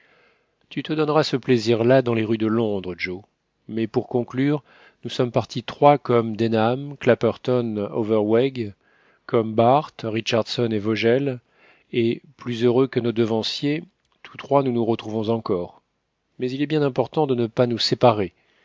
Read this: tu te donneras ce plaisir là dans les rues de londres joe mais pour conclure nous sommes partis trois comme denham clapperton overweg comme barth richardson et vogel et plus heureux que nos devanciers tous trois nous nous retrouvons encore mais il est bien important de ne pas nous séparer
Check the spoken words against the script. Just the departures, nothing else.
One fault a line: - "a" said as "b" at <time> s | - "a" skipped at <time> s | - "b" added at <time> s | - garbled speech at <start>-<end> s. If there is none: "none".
none